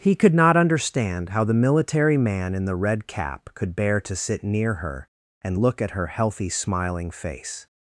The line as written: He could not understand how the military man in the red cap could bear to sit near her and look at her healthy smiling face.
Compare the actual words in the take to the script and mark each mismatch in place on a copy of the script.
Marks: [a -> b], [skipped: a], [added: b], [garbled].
He could not understand how the military man in the red cap could bear to sit near her and look at her healthy smiling face.